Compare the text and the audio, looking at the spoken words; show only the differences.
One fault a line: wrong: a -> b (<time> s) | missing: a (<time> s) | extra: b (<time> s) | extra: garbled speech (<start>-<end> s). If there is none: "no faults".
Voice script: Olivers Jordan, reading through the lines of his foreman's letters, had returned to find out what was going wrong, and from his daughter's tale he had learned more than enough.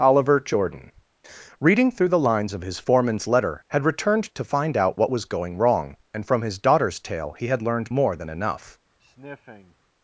wrong: Olivers -> Oliver (0.0 s)
wrong: letters -> letter (3.3 s)